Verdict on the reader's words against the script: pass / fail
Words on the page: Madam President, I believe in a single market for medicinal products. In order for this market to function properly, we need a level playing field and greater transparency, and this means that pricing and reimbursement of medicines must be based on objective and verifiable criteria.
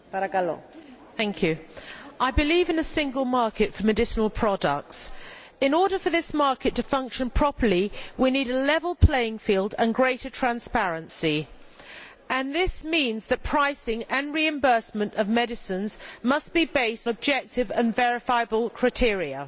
fail